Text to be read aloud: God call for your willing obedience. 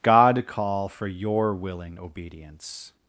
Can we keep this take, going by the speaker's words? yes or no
yes